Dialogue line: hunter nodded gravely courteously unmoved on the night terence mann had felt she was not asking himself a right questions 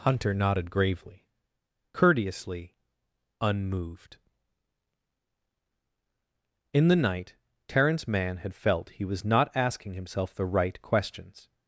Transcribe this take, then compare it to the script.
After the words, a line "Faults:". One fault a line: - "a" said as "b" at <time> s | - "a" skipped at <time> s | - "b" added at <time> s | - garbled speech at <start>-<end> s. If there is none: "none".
hunter nodded gravely courteously unmoved in the night terence mann had felt he was not asking himself the right questions
Faults:
- "on" said as "in" at 6.7 s
- "she" said as "he" at 8.9 s
- "a" said as "the" at 10.3 s